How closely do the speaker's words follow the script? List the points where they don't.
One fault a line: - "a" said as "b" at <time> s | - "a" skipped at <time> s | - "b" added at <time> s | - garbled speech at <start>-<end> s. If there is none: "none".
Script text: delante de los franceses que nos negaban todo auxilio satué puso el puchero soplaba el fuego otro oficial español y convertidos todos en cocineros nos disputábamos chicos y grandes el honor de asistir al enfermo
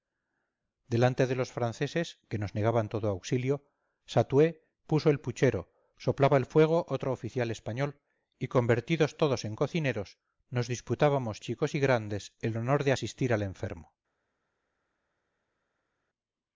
none